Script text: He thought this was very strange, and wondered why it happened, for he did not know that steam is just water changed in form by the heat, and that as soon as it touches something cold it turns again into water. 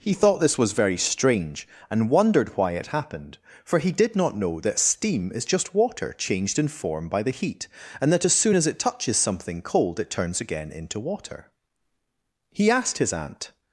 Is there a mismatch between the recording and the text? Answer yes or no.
yes